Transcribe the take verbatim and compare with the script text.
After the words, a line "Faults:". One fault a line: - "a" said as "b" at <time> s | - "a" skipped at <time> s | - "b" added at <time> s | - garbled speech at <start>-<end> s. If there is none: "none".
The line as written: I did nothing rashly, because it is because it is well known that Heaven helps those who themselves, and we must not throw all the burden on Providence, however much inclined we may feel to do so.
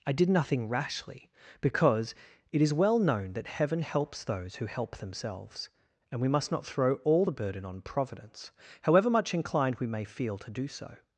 I did nothing rashly, because it is well known that Heaven helps those who help themselves, and we must not throw all the burden on Providence, however much inclined we may feel to do so.
Faults:
- "because it is" skipped at 2.7 s
- "help" added at 4.7 s